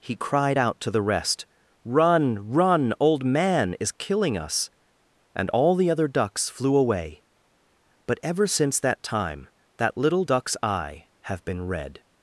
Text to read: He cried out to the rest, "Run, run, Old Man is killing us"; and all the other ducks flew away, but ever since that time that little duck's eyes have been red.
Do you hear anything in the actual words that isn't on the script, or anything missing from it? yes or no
yes